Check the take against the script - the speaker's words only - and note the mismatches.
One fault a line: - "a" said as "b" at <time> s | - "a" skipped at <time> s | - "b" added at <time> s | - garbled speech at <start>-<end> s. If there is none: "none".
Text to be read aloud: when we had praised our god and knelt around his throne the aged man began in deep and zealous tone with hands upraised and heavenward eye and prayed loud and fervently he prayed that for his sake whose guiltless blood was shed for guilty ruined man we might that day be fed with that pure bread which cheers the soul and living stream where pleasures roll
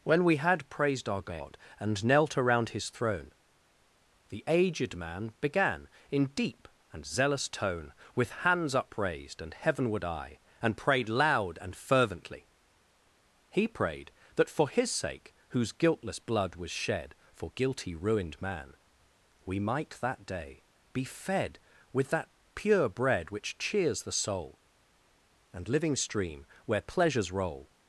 none